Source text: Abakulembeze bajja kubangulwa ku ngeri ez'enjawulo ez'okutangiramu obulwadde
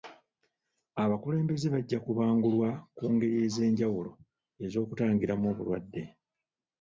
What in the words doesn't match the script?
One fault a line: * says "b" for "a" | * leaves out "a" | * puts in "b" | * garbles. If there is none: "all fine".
all fine